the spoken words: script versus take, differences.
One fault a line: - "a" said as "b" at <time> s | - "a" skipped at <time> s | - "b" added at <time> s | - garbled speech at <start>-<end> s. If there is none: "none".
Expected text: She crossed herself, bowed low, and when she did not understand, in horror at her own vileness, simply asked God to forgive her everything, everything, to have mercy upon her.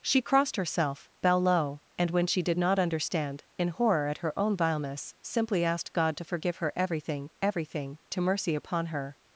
- "bowed" said as "bow" at 1.2 s
- "have" skipped at 8.2 s